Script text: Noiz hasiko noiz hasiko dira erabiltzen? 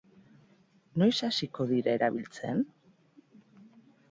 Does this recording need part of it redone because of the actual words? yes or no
yes